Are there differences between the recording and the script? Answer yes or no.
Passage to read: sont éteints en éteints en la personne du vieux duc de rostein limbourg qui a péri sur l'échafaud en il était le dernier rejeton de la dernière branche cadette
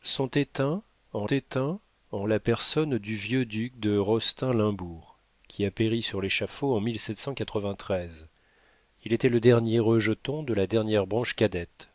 no